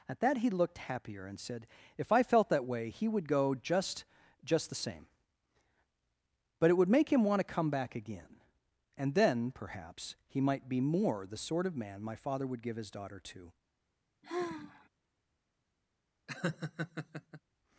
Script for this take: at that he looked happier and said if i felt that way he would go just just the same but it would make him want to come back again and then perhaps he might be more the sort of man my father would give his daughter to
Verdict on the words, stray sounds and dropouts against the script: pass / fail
fail